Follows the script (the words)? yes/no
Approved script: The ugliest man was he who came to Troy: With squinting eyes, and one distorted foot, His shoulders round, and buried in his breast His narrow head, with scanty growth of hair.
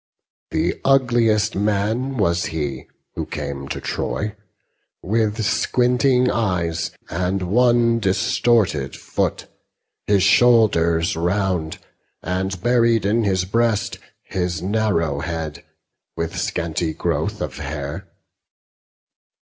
yes